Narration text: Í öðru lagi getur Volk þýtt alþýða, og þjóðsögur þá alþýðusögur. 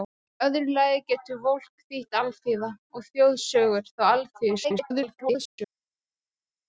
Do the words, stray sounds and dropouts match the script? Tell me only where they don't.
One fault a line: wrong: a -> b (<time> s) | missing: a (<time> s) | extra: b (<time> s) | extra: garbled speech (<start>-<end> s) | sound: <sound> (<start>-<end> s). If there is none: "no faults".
extra: garbled speech (4.6-5.6 s)